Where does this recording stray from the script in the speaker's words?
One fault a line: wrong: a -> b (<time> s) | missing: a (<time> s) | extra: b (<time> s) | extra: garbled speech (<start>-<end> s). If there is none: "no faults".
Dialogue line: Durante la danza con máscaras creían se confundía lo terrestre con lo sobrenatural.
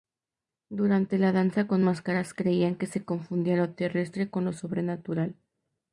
extra: que (2.8 s)